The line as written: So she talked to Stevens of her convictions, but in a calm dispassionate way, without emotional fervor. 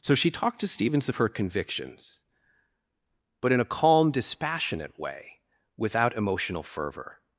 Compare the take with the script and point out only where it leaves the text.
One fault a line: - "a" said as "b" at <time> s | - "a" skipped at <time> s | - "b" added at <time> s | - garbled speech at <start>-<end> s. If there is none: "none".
none